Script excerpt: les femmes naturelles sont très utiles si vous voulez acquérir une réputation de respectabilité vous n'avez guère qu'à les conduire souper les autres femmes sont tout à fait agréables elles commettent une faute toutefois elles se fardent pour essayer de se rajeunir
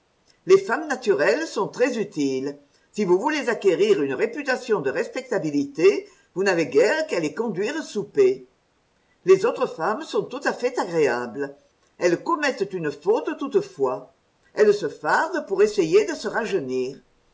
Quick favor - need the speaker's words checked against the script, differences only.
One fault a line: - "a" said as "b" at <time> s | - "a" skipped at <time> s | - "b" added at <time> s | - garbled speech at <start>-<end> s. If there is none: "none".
none